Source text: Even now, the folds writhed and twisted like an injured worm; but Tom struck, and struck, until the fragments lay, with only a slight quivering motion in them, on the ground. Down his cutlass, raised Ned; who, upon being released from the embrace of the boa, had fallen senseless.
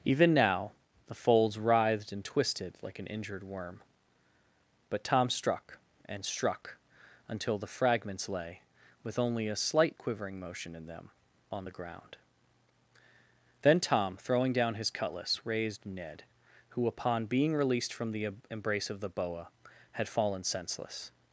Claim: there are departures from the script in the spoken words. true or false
true